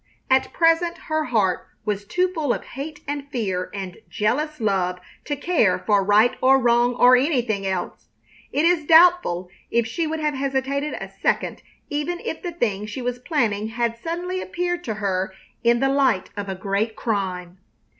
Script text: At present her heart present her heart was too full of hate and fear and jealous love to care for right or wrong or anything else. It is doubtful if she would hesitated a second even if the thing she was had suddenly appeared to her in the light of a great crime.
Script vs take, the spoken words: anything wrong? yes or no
yes